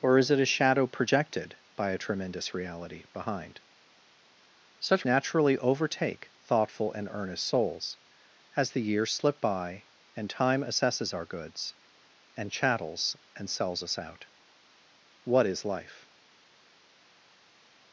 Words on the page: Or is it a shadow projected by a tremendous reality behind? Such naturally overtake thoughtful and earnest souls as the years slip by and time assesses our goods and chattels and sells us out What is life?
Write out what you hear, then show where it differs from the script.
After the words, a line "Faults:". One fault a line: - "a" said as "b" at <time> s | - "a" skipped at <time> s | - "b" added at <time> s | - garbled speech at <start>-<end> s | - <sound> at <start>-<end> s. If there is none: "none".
Or is it a shadow projected by a tremendous reality behind? Such naturally overtake thoughtful and earnest souls as the years slip by and time assesses our goods and chattels and sells us out What is life?
Faults:
none